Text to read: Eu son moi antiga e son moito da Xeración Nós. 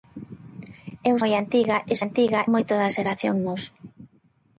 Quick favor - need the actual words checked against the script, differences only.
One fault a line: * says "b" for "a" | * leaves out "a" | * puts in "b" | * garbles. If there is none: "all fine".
* leaves out "son"
* says "antiga" for "son"